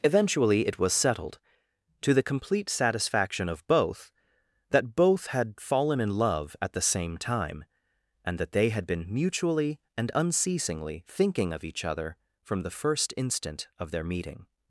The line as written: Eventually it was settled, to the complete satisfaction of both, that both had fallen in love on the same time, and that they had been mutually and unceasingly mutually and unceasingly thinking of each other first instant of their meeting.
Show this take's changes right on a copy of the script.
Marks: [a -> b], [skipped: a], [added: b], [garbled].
Eventually it was settled, to the complete satisfaction of both, that both had fallen in love [on -> at] the same time, and that they had been mutually and unceasingly [skipped: mutually and unceasingly] thinking of each other [added: from the] first instant of their meeting.